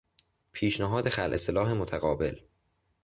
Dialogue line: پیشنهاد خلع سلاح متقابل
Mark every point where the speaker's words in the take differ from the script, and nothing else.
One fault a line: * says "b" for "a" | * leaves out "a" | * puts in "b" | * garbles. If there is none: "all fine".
all fine